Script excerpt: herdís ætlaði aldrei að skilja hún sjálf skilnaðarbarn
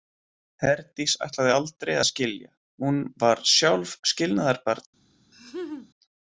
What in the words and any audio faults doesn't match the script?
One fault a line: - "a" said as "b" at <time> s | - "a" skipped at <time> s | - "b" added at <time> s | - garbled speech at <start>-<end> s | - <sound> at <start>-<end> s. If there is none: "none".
- "var" added at 3.2 s
- laugh at 5.3-5.9 s